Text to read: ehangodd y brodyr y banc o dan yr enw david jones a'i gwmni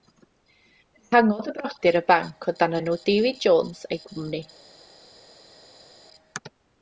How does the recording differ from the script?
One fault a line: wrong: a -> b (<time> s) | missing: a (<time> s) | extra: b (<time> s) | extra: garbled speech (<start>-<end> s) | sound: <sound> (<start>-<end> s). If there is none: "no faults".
missing: yr (2.8 s)